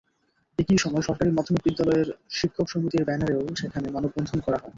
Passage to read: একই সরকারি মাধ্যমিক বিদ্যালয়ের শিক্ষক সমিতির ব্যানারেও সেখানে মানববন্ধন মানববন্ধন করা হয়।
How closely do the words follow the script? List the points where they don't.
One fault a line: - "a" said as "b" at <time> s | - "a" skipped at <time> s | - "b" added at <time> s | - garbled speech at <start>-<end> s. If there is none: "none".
- "সময়" added at 0.8 s
- "মানববন্ধন" skipped at 4.4 s